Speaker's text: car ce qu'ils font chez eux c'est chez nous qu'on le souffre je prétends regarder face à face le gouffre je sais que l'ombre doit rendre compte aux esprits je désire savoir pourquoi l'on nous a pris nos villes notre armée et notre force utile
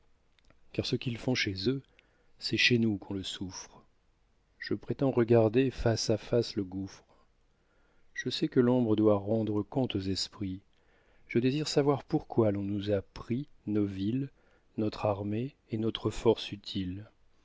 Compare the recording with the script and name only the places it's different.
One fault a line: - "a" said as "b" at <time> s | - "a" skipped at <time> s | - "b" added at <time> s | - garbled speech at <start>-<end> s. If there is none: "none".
none